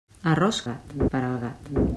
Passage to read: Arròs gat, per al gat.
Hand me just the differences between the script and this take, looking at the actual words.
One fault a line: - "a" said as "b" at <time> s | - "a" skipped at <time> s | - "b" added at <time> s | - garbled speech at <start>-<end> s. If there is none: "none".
none